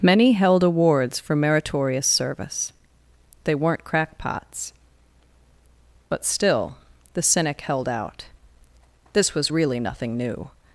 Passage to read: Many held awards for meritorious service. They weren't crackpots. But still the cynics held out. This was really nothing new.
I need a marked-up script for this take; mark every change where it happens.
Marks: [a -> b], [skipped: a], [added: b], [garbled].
Many held awards for meritorious service. They weren't crackpots. But still the [cynics -> cynic] held out. This was really nothing new.